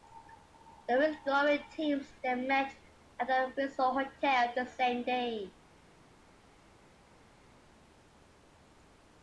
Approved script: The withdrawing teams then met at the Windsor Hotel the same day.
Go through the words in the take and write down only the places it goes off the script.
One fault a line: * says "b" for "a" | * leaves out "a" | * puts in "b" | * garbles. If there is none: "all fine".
all fine